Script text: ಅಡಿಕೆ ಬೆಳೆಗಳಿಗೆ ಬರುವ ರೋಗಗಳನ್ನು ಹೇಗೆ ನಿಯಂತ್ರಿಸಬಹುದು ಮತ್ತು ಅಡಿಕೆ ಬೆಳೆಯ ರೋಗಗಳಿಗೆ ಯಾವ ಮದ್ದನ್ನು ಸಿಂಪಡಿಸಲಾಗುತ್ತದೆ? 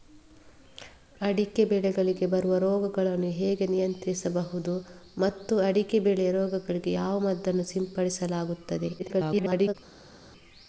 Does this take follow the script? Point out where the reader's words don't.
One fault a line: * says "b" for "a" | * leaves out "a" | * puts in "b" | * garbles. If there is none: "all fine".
* garbles